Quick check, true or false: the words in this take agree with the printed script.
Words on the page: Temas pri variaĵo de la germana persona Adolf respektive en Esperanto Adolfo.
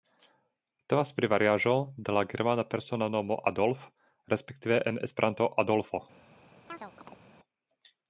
false